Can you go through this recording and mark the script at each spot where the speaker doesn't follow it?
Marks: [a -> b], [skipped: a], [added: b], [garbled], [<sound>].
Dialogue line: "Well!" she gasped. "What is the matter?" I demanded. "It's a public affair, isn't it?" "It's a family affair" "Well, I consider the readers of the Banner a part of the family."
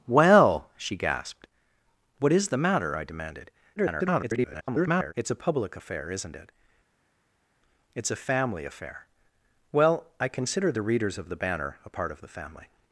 "Well!" she gasped. "What is the matter?" I demanded. [garbled] "It's a public affair, isn't it?" "It's a family affair" "Well, I consider the readers of the Banner a part of the family."